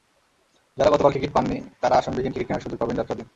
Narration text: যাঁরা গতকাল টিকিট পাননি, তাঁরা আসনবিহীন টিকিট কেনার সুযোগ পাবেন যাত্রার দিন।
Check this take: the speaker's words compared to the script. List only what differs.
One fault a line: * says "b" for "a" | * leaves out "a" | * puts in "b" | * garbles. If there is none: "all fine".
all fine